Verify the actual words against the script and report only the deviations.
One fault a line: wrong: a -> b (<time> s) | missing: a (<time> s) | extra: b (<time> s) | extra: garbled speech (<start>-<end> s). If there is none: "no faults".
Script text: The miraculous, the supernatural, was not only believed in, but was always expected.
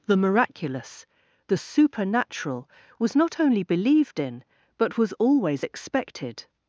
no faults